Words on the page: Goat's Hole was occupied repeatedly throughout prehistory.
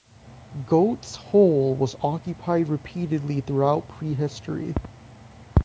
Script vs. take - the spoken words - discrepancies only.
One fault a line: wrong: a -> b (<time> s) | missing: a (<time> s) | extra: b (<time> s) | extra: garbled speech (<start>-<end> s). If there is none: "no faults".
no faults